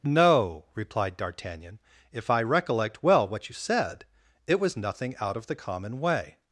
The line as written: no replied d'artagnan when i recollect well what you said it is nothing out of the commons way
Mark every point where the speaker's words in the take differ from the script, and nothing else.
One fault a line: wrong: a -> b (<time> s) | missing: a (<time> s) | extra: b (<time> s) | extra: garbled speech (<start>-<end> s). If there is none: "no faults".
wrong: when -> if (2.1 s)
wrong: is -> was (4.6 s)
wrong: commons -> common (5.5 s)